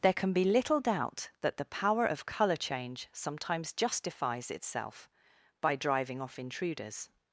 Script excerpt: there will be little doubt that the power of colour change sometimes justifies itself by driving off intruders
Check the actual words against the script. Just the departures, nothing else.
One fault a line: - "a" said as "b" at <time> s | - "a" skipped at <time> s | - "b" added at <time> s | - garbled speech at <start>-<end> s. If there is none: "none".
- "will" said as "can" at 0.1 s